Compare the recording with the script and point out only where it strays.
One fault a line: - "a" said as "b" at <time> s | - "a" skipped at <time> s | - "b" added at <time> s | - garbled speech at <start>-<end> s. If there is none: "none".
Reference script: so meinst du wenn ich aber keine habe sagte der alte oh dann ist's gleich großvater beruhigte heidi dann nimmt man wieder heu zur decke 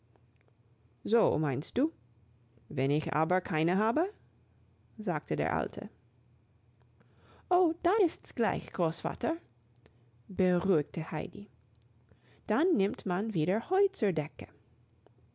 none